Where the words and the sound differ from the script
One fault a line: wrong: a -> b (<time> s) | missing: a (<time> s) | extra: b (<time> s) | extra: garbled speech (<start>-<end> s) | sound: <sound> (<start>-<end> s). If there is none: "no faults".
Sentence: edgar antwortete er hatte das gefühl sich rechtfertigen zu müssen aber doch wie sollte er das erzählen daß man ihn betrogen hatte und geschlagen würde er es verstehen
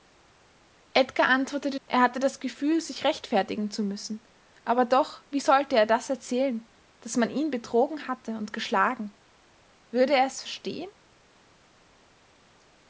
no faults